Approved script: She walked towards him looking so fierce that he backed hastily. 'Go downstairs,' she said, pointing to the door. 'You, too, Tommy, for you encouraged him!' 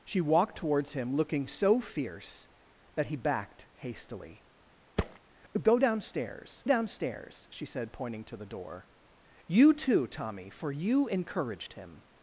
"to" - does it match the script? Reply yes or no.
yes